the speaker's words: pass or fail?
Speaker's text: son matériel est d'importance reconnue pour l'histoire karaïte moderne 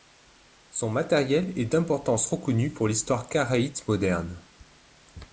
pass